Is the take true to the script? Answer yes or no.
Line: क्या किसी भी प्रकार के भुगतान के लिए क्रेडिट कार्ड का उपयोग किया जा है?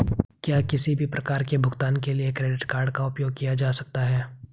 no